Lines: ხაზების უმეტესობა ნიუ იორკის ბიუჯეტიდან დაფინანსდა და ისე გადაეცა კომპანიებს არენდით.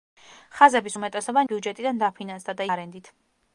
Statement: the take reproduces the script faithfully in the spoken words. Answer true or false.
false